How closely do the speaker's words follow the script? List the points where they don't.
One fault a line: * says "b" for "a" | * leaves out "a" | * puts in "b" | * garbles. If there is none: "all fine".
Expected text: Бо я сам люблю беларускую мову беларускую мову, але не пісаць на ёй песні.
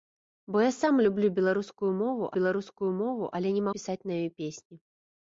all fine